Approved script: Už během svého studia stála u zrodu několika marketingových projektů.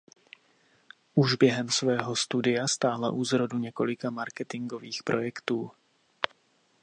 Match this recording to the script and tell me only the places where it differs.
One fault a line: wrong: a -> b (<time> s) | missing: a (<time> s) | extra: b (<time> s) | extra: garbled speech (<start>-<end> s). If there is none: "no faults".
no faults